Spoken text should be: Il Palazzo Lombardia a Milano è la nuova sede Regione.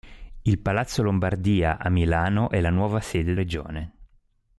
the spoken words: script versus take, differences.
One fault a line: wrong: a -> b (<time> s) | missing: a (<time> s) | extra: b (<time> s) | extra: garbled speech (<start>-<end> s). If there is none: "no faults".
no faults